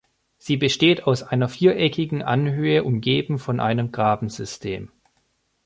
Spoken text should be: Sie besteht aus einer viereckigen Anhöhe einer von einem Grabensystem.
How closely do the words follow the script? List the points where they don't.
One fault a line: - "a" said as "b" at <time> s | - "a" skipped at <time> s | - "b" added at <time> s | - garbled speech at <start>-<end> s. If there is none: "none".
- "einer" said as "umgeben" at 2.8 s